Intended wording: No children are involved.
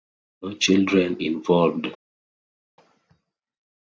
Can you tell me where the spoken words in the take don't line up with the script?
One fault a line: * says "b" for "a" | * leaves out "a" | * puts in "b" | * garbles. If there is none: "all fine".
* leaves out "are"